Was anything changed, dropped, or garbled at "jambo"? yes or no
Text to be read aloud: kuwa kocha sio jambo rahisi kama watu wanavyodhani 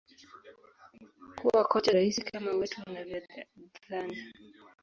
yes